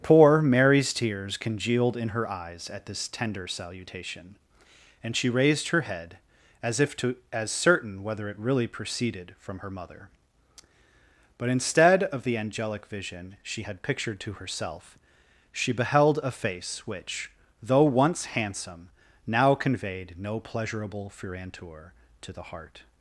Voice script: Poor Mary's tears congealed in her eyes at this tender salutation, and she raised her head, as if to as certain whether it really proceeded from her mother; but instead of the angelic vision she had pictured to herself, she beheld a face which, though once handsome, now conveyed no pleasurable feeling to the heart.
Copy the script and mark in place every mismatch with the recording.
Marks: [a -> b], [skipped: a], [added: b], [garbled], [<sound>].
Poor Mary's tears congealed in her eyes at this tender salutation, and she raised her head, as if to as certain whether it really proceeded from her mother; but instead of the angelic vision she had pictured to herself, she beheld a face which, though once handsome, now conveyed no pleasurable [feeling -> furantur] to the heart.